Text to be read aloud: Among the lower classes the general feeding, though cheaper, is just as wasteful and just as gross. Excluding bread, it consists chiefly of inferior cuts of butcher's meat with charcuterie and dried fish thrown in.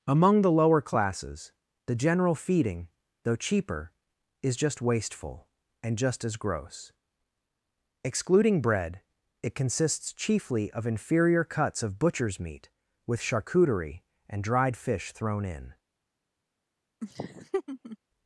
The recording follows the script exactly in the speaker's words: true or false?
false